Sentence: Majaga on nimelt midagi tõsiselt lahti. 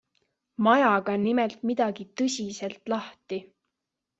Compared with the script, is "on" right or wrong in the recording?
right